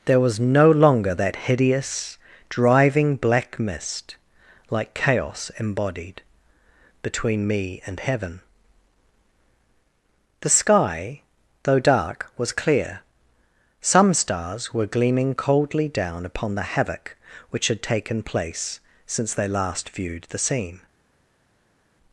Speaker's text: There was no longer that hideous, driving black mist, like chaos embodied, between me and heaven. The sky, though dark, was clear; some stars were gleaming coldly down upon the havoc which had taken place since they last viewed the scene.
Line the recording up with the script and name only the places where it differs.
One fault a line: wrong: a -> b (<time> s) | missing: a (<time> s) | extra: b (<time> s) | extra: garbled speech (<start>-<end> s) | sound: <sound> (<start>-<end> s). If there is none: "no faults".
no faults